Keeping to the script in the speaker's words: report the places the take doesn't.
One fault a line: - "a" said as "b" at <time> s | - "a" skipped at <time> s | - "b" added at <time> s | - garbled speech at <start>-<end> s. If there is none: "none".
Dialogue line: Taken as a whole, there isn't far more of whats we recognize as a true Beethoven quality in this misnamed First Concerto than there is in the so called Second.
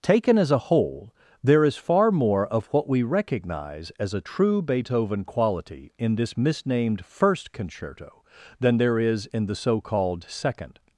- "isn't" said as "is" at 1.6 s
- "whats" said as "what" at 2.7 s